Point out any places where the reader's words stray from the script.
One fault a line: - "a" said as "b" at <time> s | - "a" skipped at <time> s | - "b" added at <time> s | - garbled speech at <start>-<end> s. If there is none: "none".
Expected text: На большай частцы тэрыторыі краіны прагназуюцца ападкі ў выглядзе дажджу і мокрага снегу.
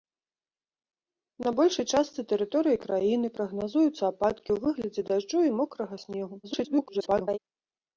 - garbled speech at 6.4-7.4 s